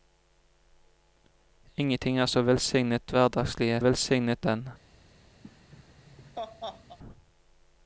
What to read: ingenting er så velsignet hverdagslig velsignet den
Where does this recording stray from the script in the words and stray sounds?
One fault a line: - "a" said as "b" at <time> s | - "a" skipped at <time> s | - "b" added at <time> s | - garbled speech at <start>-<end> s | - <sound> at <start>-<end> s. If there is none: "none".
- laugh at 5.4-7.0 s